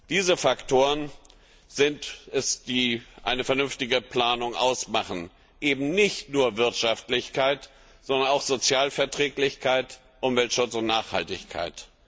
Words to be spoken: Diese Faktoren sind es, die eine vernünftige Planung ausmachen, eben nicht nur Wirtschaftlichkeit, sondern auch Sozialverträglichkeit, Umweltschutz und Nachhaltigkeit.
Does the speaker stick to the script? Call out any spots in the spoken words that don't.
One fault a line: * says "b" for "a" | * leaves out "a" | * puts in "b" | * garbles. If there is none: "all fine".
all fine